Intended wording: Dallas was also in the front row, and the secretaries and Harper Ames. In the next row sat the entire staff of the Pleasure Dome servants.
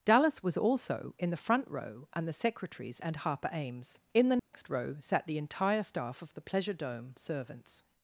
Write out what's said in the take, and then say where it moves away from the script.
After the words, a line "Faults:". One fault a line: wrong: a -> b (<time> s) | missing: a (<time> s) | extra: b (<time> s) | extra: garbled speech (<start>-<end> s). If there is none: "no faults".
Dallas was also in the front row, and the secretaries and Harper Ames. In the next row sat the entire staff of the Pleasure Dome servants.
Faults:
no faults